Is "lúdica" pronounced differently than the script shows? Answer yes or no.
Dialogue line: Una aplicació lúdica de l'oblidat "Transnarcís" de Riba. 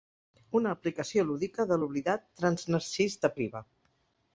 no